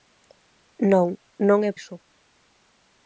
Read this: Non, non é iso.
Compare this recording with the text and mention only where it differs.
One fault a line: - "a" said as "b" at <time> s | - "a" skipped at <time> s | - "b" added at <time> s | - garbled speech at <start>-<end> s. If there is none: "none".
none